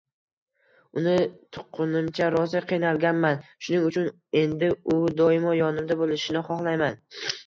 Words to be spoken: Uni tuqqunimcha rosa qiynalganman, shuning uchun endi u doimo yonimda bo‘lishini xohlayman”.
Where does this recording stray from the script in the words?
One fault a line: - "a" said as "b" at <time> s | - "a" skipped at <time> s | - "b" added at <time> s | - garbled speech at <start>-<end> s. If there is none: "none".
none